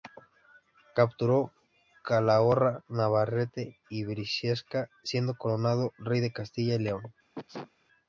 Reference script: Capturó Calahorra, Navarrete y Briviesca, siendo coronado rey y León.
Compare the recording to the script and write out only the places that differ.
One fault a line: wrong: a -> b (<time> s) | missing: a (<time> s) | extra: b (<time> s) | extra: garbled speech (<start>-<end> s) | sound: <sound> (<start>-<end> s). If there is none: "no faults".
extra: de Castilla (6.2 s)
sound: sneeze (7.3-7.7 s)